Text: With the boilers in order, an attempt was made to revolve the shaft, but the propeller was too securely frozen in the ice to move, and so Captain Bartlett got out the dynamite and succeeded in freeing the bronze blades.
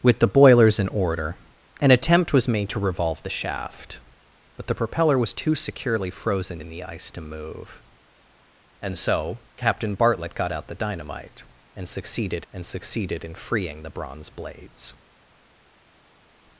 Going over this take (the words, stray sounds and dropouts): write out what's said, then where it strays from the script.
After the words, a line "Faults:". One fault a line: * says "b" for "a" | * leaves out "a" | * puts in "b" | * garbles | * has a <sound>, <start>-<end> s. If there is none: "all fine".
With the boilers in order, an attempt was made to revolve the shaft, but the propeller was too securely frozen in the ice to move, and so Captain Bartlett got out the dynamite and succeeded and succeeded in freeing the bronze blades.
Faults:
* puts in "and succeeded"